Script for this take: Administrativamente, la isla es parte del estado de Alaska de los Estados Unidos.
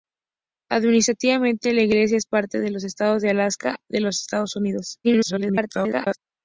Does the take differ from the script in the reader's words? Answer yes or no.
yes